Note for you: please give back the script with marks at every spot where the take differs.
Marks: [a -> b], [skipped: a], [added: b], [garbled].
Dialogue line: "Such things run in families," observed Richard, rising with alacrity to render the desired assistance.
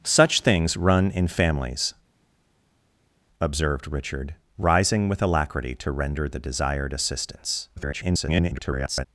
"Such things run in families," observed Richard, rising with alacrity to render the desired assistance. [garbled]